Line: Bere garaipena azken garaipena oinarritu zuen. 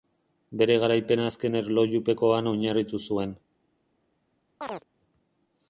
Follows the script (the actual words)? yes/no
no